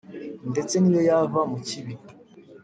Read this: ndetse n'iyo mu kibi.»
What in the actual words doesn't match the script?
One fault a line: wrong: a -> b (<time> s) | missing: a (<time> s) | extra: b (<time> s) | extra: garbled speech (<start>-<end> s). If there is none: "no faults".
extra: yava (1.1 s)